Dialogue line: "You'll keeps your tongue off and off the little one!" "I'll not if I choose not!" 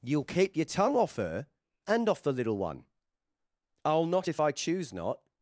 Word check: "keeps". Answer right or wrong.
wrong